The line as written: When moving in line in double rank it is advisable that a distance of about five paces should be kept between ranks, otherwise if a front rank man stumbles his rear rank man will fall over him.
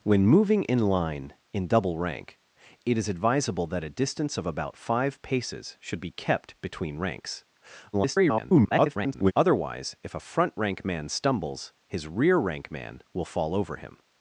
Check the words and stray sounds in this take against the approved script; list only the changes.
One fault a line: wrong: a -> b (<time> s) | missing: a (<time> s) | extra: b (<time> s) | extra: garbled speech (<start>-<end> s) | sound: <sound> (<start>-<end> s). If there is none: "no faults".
extra: garbled speech (7.9-9.3 s)